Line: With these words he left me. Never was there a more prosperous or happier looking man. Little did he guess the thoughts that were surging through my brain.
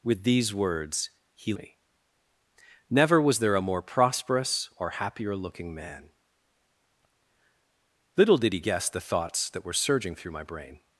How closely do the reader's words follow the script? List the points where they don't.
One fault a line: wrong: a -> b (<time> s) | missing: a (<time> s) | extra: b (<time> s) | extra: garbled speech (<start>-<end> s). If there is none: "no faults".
missing: left (1.5 s)